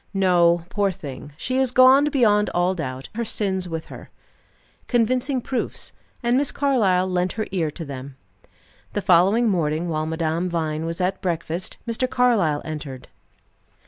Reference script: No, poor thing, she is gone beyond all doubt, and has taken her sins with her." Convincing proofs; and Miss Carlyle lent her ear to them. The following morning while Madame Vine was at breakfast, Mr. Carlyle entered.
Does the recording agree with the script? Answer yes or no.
no